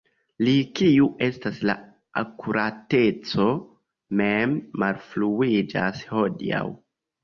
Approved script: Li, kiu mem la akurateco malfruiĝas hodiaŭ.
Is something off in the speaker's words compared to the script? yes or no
yes